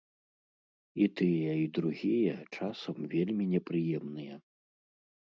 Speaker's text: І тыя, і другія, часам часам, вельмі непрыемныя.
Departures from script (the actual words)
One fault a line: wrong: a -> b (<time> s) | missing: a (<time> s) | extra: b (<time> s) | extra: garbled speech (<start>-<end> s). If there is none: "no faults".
missing: часам (3.0 s)